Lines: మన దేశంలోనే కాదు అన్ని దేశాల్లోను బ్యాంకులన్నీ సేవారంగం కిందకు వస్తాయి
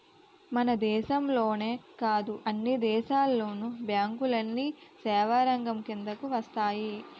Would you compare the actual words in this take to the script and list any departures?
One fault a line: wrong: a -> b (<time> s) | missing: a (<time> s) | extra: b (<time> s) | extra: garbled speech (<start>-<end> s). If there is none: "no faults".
no faults